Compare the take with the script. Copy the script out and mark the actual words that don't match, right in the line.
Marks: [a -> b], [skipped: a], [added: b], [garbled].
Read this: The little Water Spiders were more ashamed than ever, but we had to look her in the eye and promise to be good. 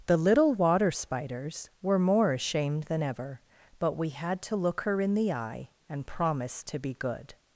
The little Water Spiders were more ashamed than ever, but we had to look her in the eye and promise to be good.